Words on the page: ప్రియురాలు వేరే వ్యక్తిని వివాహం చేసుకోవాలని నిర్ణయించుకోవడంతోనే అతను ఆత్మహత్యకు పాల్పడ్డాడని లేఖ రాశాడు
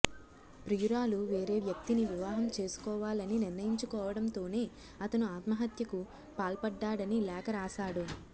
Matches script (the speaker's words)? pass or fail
pass